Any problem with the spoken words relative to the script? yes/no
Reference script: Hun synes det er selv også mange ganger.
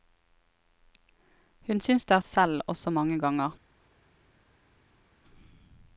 no